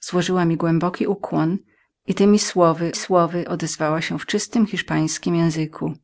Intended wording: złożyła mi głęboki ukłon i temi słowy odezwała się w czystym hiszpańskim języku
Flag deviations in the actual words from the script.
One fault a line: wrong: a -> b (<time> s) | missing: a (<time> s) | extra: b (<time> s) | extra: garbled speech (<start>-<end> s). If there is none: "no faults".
extra: słowy (2.9 s)